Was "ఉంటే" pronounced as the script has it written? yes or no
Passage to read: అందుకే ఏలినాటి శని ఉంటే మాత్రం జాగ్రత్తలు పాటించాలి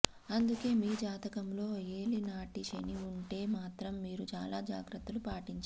yes